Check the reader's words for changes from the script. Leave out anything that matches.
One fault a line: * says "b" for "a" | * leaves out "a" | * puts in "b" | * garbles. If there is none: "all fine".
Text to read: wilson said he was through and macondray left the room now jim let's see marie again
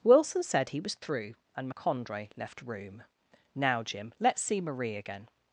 * leaves out "the"